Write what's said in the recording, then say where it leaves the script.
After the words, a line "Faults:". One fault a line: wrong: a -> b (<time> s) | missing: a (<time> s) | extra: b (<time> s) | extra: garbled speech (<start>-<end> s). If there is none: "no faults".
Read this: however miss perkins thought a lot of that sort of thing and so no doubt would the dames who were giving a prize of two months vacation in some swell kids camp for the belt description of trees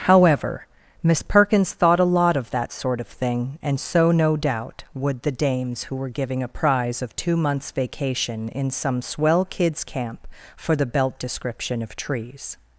however miss perkins thought a lot of that sort of thing and so no doubt would the dames who were giving a prize of two months vacation in some swell kids camp for the belt description of trees
Faults:
no faults